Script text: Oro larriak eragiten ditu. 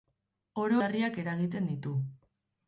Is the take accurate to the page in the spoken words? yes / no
yes